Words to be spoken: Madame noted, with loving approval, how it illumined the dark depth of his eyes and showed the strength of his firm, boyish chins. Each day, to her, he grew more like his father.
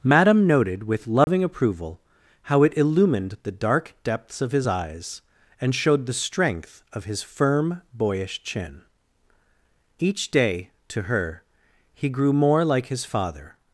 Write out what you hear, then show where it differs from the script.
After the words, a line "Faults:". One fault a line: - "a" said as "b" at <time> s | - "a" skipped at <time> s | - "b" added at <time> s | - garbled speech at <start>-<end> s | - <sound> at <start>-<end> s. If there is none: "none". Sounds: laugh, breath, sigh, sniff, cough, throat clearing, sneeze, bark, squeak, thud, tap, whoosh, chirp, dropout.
Madame noted, with loving approval, how it illumined the dark depths of his eyes and showed the strength of his firm, boyish chin. Each day, to her, he grew more like his father.
Faults:
- dropout at 1.2-1.3 s
- "depth" said as "depths" at 4.0 s
- "chins" said as "chin" at 8.4 s